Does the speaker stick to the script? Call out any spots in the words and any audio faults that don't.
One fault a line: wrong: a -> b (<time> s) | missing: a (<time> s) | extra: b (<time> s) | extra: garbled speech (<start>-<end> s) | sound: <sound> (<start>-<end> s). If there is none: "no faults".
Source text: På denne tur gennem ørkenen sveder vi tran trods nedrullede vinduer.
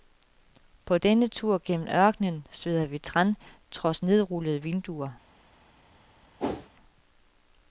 sound: whoosh (6.4-6.7 s)